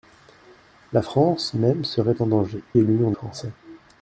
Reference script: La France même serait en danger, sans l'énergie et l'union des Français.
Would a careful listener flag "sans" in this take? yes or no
yes